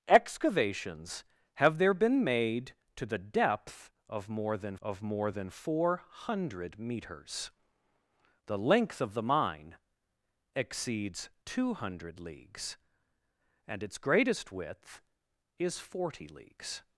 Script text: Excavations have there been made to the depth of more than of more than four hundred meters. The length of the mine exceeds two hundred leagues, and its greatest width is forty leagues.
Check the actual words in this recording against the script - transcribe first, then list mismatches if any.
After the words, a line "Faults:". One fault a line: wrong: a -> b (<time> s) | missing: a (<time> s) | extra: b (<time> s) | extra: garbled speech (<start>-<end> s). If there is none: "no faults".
Excavations have there been made to the depth of more than of more than four hundred meters. The length of the mine exceeds two hundred leagues, and its greatest width is forty leagues.
Faults:
no faults